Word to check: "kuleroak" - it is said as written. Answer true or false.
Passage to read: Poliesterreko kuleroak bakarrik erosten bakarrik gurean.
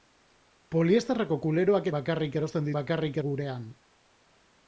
true